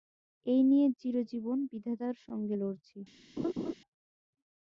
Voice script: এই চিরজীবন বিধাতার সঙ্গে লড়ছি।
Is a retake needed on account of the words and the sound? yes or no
yes